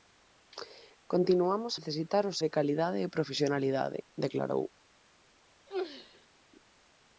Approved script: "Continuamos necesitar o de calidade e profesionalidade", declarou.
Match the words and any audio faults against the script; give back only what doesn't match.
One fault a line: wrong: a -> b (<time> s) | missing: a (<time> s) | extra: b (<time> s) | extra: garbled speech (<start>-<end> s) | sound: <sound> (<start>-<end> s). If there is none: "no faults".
sound: sneeze (5.7-6.3 s)